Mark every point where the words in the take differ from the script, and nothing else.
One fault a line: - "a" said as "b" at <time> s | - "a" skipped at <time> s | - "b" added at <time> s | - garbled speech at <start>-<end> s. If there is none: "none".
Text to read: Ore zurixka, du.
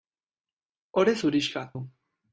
none